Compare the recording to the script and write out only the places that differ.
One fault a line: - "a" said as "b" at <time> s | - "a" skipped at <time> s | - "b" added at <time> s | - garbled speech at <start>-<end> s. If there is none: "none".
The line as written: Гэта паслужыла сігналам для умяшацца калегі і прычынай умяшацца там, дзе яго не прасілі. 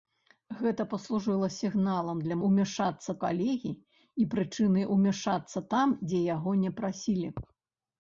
none